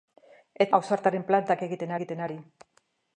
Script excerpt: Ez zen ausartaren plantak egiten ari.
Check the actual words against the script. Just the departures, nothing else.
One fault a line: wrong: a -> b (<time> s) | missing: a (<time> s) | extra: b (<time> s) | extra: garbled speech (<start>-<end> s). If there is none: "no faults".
missing: zen (0.7 s)
extra: egiten (2.0 s)